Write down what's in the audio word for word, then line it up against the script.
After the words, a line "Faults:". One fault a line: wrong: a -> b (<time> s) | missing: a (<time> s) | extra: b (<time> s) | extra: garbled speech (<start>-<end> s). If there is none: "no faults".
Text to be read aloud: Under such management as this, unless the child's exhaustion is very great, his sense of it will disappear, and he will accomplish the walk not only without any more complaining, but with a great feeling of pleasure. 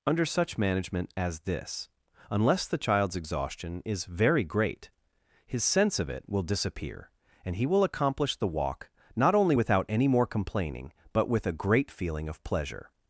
Under such management as this, unless the child's exhaustion is very great, his sense of it will disappear, and he will accomplish the walk not only without any more complaining, but with a great feeling of pleasure.
Faults:
no faults